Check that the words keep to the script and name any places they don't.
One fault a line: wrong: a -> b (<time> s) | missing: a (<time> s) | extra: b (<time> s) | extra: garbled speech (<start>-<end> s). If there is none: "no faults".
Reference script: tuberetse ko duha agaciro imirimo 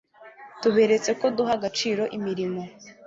no faults